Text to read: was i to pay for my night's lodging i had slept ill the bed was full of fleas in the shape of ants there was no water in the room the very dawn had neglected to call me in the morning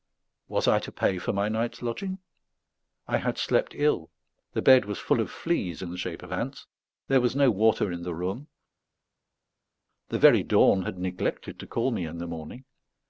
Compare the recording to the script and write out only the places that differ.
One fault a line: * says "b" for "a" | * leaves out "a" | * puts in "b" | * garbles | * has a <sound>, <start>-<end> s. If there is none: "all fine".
all fine